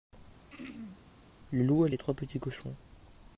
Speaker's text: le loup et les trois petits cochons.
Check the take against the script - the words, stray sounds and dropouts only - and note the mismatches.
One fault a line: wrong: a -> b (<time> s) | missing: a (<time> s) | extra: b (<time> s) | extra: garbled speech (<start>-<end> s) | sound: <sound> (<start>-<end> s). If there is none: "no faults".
sound: throat clearing (0.5-1.0 s)